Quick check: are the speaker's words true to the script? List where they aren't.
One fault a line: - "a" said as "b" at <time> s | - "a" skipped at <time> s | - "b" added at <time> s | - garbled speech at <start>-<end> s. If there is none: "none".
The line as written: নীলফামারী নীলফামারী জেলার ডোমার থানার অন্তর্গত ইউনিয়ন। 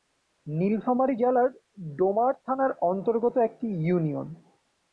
- "নীলফামারী" skipped at 1.1 s
- "একটি" added at 3.4 s